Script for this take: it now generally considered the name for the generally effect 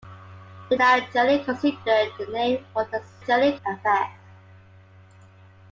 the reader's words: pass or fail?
pass